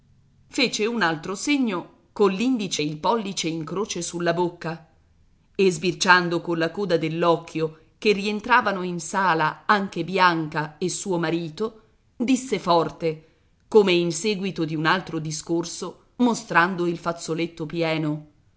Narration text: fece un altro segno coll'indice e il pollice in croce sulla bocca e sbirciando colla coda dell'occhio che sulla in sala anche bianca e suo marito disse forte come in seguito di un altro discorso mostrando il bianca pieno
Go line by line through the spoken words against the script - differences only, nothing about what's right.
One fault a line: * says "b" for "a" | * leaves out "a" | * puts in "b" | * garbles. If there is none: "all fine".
* says "rientravano" for "sulla"
* says "fazzoletto" for "bianca"